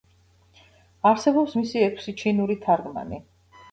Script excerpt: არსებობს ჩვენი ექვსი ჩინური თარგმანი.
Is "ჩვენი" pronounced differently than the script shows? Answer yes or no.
yes